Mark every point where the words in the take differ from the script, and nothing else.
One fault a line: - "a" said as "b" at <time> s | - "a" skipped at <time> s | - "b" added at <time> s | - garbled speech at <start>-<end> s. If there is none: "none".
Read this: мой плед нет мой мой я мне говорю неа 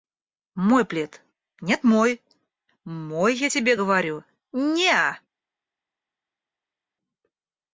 - "мне" said as "тебе" at 3.5 s